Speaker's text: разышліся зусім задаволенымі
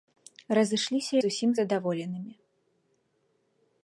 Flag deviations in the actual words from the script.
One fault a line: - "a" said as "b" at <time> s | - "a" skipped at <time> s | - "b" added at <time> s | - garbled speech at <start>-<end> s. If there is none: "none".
none